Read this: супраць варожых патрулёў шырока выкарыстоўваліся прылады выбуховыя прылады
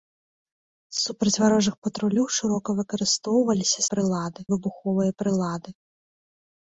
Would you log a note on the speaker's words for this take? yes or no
no